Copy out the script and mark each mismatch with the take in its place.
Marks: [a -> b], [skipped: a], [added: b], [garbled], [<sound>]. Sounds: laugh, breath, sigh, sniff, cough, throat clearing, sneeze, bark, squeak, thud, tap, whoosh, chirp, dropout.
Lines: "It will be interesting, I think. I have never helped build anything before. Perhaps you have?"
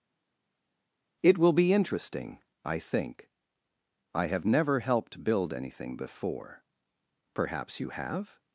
"It will be interesting, I think. I have never helped build anything before. Perhaps you have?"